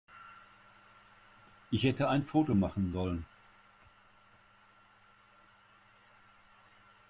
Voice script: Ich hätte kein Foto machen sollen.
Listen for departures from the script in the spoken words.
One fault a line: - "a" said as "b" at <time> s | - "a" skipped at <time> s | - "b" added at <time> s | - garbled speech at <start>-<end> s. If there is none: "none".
- "kein" said as "ein" at 2.1 s